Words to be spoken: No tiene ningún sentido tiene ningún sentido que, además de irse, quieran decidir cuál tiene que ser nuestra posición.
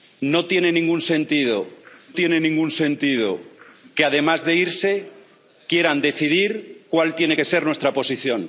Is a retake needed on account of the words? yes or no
no